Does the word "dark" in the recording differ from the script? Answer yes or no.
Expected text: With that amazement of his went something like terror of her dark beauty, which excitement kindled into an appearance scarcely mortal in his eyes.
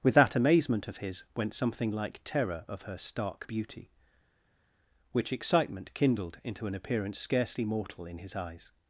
yes